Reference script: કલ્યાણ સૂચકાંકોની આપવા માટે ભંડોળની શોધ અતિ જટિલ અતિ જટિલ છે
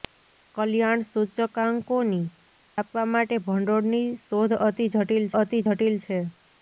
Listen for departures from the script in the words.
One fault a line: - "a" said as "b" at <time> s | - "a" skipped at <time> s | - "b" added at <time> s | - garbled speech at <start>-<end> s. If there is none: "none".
none